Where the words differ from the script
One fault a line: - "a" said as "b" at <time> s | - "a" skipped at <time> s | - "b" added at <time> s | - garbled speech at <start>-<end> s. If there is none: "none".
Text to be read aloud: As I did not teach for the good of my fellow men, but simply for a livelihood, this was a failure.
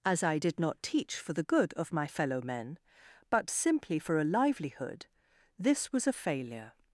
none